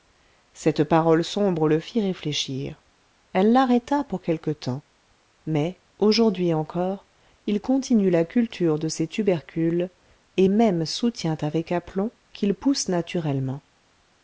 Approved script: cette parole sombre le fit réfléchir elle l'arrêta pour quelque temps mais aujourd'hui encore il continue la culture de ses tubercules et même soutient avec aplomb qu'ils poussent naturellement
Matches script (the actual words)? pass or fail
pass